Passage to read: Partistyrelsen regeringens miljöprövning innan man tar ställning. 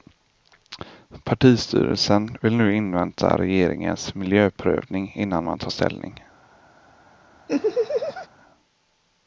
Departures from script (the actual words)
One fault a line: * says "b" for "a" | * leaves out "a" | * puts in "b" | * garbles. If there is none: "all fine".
* puts in "vill nu invänta"